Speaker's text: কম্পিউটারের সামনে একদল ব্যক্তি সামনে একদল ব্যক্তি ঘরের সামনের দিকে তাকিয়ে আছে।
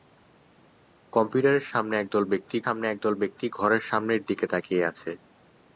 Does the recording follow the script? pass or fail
pass